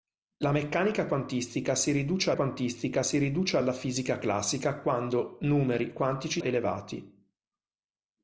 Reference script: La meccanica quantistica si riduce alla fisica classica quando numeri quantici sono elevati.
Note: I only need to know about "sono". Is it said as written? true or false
false